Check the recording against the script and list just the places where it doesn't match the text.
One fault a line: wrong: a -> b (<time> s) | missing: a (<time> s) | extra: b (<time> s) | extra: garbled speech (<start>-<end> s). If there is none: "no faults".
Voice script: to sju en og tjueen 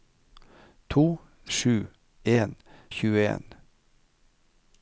no faults